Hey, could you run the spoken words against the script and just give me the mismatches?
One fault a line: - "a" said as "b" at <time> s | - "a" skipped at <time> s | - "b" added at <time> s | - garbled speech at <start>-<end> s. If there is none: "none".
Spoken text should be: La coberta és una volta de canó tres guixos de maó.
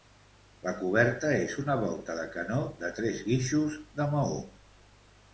- "de" added at 2.8 s